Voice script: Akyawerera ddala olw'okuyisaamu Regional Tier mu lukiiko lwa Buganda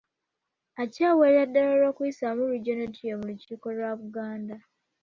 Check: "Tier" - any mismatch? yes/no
no